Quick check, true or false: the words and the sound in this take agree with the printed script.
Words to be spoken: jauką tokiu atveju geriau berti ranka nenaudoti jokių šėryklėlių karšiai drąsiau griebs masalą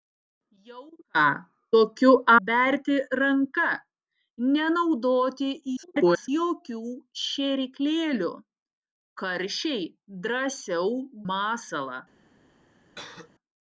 false